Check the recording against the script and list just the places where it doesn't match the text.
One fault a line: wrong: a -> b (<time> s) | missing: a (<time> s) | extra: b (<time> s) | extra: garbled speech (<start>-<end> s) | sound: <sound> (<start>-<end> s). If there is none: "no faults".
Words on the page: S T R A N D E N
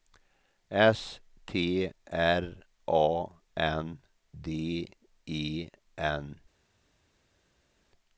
no faults